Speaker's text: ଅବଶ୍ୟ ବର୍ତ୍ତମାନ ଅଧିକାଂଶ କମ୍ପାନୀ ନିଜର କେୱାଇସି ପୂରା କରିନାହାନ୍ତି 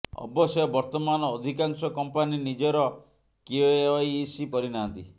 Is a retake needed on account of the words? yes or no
yes